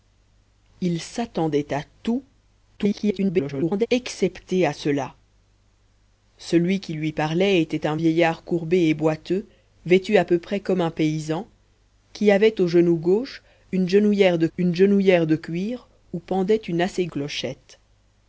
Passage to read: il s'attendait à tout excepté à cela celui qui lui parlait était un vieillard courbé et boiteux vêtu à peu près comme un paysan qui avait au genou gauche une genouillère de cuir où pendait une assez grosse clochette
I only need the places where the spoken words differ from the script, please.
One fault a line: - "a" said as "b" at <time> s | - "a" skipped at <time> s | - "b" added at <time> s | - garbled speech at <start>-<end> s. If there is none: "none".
- garbled speech at 2.8-3.9 s
- "une genouillère de" added at 14.6 s
- "grosse" skipped at 17.1 s